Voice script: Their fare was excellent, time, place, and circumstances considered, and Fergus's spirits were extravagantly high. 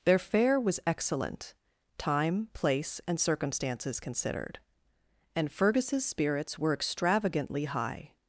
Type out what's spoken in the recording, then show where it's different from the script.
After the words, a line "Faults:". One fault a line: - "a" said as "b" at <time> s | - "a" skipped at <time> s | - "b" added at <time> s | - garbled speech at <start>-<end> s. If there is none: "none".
Their fare was excellent, time, place, and circumstances considered, and Fergus's spirits were extravagantly high.
Faults:
none